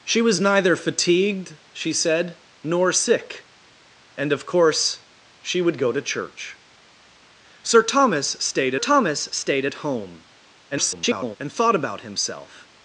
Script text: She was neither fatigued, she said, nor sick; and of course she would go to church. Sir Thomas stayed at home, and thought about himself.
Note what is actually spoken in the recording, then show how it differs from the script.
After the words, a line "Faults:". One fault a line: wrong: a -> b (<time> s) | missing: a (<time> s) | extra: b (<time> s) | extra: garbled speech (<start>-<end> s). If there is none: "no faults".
She was neither fatigued, she said, nor sick; and of course she would go to church. Sir Thomas stayed Thomas stayed at home, [garbled] and thought about himself.
Faults:
extra: Thomas stayed (8.8 s)
extra: garbled speech (10.7-11.4 s)